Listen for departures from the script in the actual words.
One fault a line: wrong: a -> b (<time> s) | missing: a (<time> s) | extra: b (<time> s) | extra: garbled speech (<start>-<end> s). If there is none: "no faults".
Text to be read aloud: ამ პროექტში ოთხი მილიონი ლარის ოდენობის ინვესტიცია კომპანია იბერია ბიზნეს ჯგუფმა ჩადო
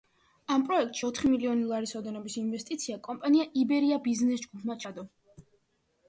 no faults